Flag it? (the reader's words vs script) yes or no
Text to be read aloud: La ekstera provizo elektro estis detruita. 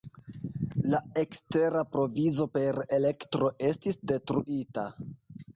yes